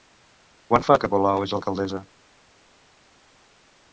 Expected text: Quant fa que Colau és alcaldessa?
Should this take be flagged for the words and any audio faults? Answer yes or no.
no